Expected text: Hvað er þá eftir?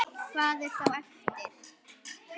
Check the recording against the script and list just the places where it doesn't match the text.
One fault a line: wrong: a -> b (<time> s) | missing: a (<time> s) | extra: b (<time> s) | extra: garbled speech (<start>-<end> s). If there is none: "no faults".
no faults